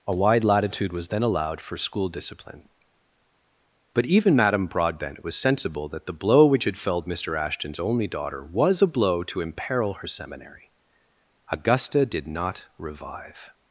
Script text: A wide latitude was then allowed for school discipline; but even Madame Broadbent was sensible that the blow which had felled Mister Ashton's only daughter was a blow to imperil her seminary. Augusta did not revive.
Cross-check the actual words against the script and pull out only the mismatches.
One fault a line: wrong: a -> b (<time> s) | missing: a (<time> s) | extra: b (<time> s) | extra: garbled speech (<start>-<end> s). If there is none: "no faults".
no faults